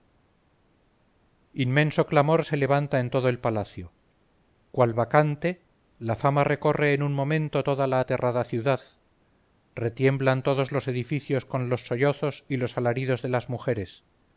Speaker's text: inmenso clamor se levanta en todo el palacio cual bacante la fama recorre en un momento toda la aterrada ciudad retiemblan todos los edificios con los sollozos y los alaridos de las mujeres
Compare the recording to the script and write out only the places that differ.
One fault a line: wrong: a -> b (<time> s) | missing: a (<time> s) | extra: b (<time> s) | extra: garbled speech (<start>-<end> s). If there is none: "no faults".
no faults